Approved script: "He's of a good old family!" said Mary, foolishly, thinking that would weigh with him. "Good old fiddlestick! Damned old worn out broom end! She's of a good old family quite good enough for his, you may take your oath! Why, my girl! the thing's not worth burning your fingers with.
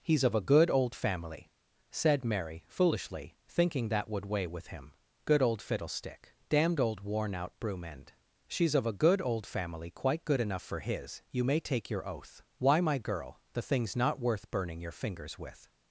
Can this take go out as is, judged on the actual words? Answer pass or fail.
pass